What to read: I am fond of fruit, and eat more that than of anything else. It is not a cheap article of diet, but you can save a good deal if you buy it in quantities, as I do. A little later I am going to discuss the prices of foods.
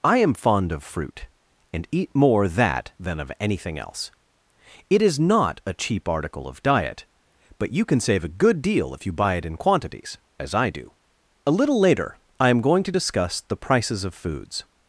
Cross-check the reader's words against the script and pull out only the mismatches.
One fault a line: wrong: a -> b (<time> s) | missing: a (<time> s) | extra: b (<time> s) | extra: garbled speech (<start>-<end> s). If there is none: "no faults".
no faults